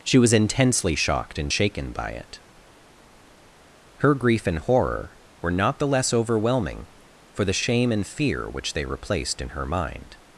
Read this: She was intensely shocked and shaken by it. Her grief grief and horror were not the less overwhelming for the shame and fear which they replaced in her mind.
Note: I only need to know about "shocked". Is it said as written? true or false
true